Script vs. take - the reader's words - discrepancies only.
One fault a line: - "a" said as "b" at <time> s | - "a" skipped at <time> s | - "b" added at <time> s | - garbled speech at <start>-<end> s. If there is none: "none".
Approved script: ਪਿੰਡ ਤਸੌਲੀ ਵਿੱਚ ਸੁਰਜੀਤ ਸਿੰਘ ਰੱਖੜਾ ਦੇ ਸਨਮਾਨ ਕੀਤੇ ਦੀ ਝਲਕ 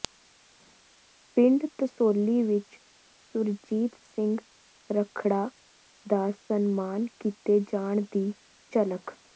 - "ਦੇ" said as "ਦਾ" at 6.0 s
- "ਜਾਣ" added at 7.7 s